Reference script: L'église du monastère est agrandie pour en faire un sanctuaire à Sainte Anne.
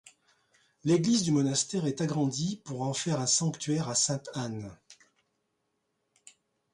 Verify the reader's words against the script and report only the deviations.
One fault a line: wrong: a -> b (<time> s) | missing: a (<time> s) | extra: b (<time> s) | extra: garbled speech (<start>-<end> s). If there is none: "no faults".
no faults